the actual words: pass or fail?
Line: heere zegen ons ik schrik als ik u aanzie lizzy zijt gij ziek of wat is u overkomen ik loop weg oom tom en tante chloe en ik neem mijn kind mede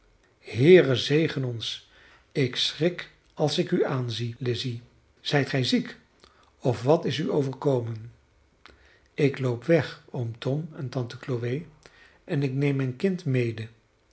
pass